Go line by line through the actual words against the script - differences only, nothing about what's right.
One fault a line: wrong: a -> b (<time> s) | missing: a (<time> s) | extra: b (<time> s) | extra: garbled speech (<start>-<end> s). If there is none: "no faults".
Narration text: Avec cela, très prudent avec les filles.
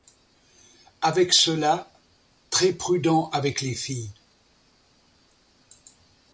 no faults